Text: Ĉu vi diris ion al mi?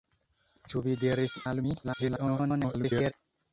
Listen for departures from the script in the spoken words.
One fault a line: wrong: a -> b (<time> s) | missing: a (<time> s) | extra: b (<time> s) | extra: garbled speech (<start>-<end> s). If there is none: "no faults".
missing: ion (1.4 s)
extra: garbled speech (1.8-3.1 s)